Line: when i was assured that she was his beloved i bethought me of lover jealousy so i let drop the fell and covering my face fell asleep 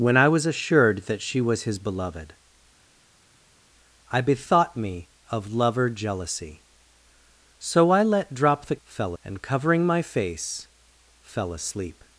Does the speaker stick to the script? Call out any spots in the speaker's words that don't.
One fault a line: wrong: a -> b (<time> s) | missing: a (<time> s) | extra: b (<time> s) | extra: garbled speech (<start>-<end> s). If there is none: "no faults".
no faults